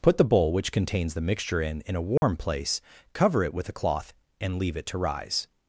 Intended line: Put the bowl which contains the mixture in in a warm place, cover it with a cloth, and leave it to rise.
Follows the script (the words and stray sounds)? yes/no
no